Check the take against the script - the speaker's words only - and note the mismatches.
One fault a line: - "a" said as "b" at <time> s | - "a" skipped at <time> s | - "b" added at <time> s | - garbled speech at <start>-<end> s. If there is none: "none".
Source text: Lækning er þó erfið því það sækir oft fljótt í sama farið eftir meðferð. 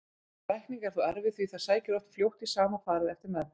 none